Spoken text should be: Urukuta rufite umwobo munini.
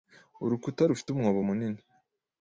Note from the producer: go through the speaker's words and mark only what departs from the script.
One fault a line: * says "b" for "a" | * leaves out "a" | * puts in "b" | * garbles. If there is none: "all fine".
all fine